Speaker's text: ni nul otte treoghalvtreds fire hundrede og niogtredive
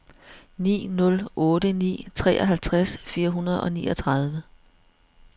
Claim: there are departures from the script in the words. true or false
true